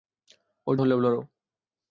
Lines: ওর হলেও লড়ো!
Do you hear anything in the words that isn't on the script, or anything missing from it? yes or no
no